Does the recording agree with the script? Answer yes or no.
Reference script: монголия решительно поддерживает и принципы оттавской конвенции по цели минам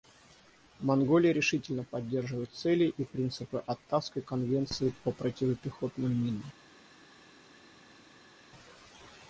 no